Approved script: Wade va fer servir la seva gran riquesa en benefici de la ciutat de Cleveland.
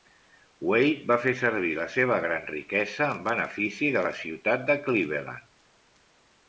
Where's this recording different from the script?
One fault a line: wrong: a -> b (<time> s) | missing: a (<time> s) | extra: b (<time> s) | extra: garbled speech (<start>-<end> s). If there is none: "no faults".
no faults